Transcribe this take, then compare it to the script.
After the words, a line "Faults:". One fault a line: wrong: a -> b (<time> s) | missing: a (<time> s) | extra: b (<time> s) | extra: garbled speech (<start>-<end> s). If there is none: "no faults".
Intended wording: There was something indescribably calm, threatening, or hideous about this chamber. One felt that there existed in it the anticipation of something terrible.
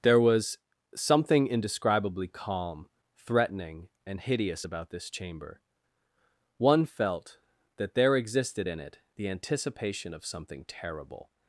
There was something indescribably calm, threatening, and hideous about this chamber. One felt that there existed in it the anticipation of something terrible.
Faults:
wrong: or -> and (4.0 s)